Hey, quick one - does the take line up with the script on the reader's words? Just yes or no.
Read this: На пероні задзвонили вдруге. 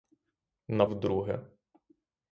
no